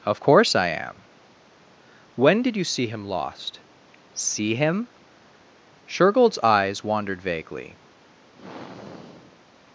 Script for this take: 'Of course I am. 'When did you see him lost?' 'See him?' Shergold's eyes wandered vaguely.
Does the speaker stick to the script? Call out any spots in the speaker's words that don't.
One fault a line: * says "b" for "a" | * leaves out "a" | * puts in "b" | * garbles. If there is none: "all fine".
all fine